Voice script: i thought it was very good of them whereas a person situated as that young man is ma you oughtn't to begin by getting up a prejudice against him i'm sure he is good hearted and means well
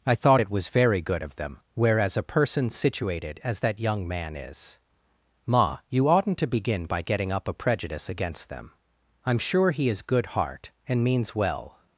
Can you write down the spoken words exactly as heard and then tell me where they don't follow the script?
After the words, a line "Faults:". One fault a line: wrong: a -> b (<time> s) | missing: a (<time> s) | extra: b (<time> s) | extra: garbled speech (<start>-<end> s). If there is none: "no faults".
i thought it was very good of them whereas a person situated as that young man is ma you oughtn't to begin by getting up a prejudice against them i'm sure he is good heart and means well
Faults:
wrong: him -> them (8.5 s)
wrong: hearted -> heart (10.3 s)